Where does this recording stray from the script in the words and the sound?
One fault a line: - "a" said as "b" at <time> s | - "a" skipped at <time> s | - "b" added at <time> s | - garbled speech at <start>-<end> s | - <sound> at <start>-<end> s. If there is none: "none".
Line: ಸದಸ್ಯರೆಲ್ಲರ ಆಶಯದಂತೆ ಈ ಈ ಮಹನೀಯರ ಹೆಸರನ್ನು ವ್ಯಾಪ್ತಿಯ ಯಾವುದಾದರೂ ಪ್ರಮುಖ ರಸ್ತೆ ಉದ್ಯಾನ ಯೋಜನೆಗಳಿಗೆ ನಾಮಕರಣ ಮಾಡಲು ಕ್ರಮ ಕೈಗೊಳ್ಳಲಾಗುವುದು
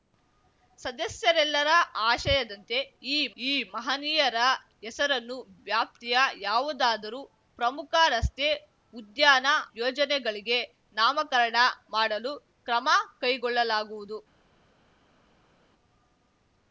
none